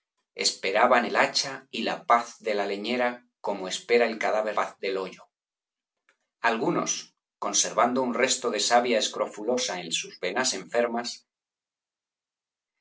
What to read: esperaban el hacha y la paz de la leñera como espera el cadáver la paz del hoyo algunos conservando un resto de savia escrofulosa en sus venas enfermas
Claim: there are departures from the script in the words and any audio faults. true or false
true